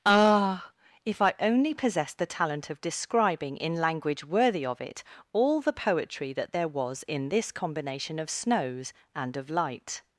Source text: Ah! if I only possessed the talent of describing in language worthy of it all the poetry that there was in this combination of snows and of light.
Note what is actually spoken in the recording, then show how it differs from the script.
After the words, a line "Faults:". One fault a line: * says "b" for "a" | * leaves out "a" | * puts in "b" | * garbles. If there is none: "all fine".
Ah! if I only possessed the talent of describing in language worthy of it all the poetry that there was in this combination of snows and of light.
Faults:
all fine